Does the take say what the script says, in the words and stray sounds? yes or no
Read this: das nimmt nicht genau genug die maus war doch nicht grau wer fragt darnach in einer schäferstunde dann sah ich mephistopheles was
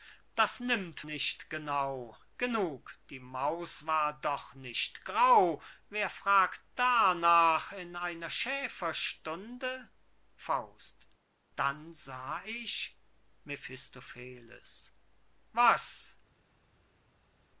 yes